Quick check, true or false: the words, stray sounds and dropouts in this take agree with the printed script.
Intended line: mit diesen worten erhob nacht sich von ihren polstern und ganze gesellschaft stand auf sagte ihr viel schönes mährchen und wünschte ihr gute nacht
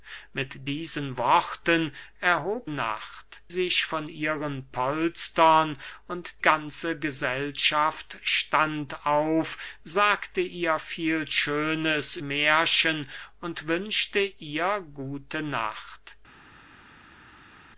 true